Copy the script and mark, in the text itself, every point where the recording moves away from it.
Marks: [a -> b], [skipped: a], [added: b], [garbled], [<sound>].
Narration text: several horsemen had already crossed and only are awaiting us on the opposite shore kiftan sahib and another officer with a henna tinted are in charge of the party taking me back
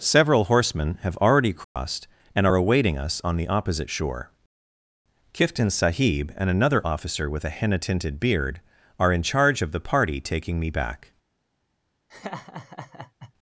several horsemen [had -> have] already crossed [dropout] and [skipped: only] are awaiting us on the opposite shore kiftan sahib and another officer with a henna tinted [added: beard] are in charge of the party taking me back [laugh]